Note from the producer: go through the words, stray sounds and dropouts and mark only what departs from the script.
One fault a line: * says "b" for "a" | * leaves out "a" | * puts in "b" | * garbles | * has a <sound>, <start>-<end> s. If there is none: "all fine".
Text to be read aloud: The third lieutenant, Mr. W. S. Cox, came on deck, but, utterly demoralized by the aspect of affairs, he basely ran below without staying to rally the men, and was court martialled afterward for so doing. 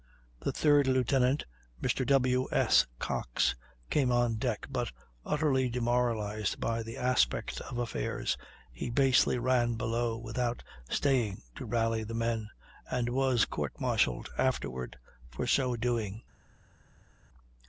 all fine